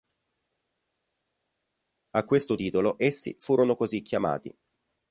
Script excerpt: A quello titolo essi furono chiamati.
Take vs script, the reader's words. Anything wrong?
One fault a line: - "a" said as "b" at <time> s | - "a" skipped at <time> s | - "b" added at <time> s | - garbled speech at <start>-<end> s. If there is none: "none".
- "quello" said as "questo" at 2.2 s
- "così" added at 3.7 s